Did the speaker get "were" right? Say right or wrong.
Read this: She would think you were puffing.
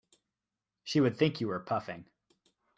right